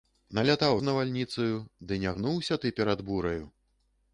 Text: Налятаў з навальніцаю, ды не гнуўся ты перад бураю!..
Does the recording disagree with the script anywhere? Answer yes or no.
no